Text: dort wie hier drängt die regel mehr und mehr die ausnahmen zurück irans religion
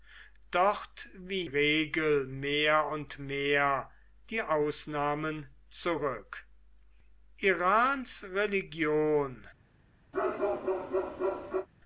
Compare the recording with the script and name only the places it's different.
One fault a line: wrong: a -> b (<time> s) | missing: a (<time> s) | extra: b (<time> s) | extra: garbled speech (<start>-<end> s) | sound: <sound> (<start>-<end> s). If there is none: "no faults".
missing: hier drängt die (1.4 s)
sound: bark (10.1-11.7 s)